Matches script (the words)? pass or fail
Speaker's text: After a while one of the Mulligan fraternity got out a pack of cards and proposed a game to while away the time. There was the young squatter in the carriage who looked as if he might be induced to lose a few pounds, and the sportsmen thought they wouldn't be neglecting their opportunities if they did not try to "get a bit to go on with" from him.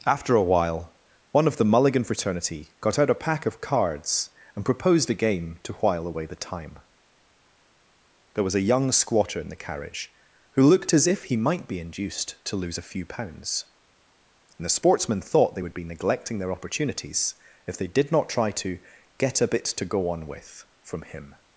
fail